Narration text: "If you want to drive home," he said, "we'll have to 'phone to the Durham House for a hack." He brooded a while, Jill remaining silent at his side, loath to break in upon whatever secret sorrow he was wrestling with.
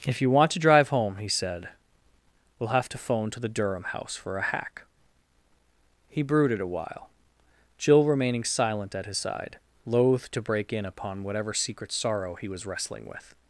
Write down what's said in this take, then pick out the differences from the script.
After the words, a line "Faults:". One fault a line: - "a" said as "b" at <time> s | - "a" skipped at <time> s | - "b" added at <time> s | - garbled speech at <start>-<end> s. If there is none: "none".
"If you want to drive home," he said, "we'll have to 'phone to the Durham House for a hack." He brooded a while, Jill remaining silent at his side, loath to break in upon whatever secret sorrow he was wrestling with.
Faults:
none